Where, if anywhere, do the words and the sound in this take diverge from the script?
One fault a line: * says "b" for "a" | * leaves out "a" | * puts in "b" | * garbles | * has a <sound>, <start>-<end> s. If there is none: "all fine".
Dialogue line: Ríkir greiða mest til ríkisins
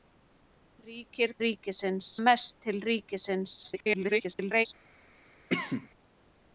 * says "ríkisins" for "greiða"
* garbles
* has a cough, 5.5-5.9 s